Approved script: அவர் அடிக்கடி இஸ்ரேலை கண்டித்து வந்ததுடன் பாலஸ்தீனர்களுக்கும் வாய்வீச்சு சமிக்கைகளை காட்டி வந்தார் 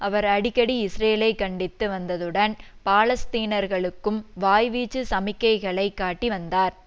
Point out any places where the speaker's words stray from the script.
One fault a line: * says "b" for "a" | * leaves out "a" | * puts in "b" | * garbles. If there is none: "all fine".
all fine